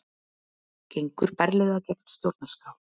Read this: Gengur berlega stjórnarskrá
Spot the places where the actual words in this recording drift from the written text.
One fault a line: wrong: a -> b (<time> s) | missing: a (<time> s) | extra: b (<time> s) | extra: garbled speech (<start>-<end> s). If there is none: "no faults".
extra: gegn (1.9 s)